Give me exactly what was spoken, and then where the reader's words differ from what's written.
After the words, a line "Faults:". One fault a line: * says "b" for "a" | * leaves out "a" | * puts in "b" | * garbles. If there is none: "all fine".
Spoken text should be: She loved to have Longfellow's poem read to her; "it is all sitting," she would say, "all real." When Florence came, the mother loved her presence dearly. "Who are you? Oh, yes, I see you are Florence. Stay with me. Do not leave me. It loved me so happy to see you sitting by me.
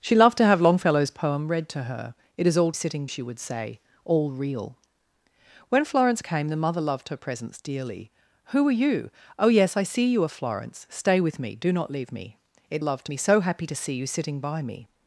She loved to have Longfellow's poem read to her; "it is all sitting," she would say, "all real." When Florence came, the mother loved her presence dearly. "Who are you? Oh, yes, I see you are Florence. Stay with me. Do not leave me. It loved me so happy to see you sitting by me.
Faults:
all fine